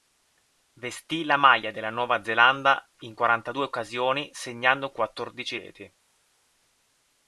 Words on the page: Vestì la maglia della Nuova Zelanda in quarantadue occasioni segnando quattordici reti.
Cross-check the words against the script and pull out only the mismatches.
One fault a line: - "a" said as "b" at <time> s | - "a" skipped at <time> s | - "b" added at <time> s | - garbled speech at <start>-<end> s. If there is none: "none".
none